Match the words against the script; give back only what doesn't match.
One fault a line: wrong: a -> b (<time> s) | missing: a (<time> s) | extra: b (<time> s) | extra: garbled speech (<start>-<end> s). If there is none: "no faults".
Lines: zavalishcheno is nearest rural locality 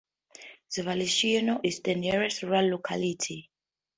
extra: the (1.8 s)